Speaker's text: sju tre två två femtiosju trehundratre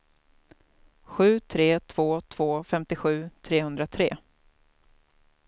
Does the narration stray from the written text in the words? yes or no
no